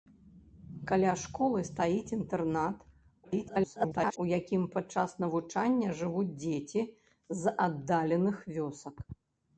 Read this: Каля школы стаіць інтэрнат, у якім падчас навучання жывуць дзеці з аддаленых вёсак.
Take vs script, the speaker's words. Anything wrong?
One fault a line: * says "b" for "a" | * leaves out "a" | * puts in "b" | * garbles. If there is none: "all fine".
* garbles